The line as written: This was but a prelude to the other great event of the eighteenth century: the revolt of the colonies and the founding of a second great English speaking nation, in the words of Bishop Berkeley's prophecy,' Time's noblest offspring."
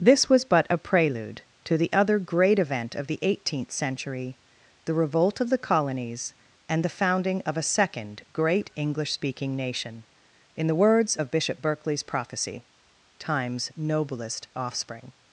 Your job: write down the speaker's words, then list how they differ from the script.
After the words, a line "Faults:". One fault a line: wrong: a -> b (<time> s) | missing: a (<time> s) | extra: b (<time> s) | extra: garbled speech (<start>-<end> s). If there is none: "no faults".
This was but a prelude to the other great event of the eighteenth century: the revolt of the colonies and the founding of a second great English speaking nation, in the words of Bishop Berkeley's prophecy,' Time's noblest offspring."
Faults:
no faults